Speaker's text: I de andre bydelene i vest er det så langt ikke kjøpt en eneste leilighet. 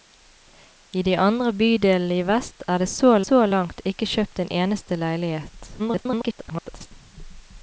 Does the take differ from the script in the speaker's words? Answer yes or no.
yes